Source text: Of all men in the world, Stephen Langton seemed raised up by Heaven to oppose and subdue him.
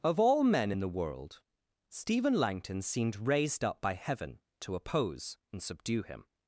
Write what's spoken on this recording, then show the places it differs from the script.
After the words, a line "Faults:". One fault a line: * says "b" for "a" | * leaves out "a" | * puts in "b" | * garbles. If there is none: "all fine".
Of all men in the world, Stephen Langton seemed raised up by Heaven to oppose and subdue him.
Faults:
all fine